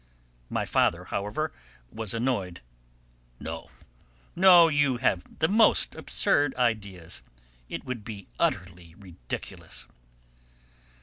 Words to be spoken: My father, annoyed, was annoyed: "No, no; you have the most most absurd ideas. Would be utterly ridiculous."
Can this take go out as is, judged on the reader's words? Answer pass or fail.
fail